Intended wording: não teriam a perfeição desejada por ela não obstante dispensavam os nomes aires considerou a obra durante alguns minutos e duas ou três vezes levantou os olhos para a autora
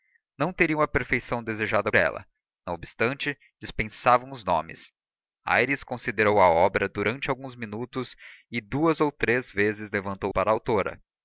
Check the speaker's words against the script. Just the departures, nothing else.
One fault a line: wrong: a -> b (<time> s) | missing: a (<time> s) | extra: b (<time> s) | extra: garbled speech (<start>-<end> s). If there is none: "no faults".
missing: por (1.9 s)
missing: os olhos (10.3 s)